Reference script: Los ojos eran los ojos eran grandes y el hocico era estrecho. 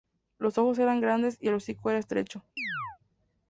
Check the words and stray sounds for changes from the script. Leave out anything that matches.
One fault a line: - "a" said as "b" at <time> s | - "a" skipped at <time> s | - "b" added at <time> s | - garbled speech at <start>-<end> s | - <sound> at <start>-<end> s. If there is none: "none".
- "los ojos eran" skipped at 1.0 s
- chirp at 2.6-3.0 s